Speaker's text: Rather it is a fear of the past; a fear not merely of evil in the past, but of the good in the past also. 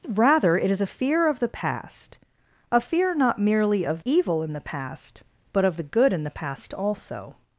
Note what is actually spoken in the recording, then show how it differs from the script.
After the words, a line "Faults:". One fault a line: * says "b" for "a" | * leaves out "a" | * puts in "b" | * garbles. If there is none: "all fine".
Rather it is a fear of the past; a fear not merely of evil in the past, but of the good in the past also.
Faults:
all fine